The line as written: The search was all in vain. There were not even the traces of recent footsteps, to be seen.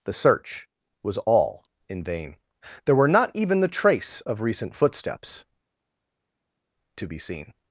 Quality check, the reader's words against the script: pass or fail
fail